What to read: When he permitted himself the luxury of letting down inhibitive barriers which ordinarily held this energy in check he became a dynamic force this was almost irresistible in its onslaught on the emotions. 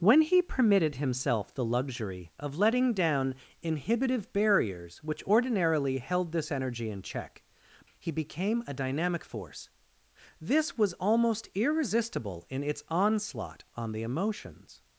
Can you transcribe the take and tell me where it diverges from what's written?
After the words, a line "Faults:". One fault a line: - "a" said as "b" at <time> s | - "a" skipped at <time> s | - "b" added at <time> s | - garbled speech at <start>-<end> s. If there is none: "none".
When he permitted himself the luxury of letting down inhibitive barriers which ordinarily held this energy in check he became a dynamic force this was almost irresistible in its onslaught on the emotions.
Faults:
none